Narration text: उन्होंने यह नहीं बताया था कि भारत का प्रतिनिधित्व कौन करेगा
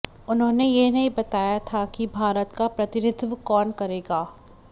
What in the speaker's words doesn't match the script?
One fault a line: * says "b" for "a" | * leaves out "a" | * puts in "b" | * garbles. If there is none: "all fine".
all fine